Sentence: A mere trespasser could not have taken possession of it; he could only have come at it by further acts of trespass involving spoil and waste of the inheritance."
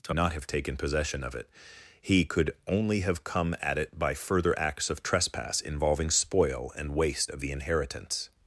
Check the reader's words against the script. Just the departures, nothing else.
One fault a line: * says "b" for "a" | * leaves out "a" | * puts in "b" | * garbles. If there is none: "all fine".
* leaves out "mere trespasser could"